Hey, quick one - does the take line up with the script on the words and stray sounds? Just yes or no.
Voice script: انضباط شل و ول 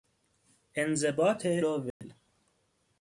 no